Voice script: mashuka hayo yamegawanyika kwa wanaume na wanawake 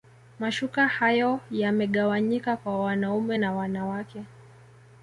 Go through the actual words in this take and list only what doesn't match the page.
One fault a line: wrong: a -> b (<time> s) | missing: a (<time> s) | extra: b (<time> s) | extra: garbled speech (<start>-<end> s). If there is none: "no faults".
no faults